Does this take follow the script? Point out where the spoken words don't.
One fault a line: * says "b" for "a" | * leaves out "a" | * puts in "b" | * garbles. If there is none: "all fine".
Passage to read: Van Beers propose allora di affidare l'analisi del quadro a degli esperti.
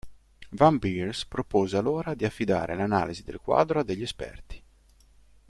all fine